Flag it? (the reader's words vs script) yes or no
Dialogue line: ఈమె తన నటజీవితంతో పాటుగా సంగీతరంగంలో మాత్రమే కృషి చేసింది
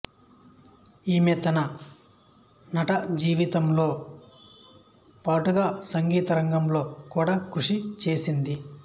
yes